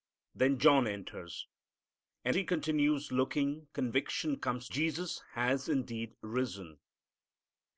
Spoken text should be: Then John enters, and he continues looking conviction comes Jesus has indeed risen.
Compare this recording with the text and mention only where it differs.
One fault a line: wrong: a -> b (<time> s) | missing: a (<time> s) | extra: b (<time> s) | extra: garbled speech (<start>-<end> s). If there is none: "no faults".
no faults